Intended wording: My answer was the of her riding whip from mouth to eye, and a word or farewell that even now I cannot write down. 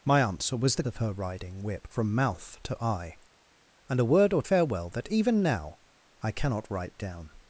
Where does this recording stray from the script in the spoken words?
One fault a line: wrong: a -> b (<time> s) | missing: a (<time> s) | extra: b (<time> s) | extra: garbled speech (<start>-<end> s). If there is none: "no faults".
no faults